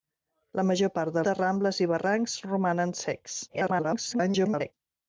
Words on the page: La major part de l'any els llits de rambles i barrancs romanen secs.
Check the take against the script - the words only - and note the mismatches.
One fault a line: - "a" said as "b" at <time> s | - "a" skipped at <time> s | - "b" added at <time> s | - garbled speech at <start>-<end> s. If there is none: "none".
- "l'any els llits" skipped at 1.2 s
- garbled speech at 3.5-4.7 s